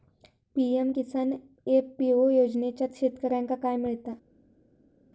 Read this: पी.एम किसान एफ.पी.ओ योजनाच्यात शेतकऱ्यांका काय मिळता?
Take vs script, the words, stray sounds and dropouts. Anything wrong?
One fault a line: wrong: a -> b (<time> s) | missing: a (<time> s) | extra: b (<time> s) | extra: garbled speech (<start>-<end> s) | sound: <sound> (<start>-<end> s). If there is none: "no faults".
no faults